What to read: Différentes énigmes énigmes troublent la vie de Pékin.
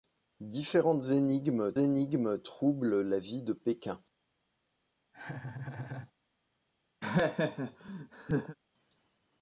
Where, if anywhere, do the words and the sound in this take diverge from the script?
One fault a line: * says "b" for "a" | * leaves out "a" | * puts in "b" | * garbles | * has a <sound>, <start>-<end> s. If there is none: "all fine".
* has a laugh, 5.1-6.1 s
* has a laugh, 7.0-8.6 s